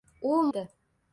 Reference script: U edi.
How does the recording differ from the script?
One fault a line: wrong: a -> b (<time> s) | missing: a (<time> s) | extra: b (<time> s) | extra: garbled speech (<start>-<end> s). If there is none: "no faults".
no faults